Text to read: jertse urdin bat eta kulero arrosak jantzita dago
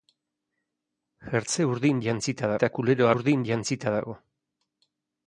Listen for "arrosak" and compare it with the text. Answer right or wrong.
wrong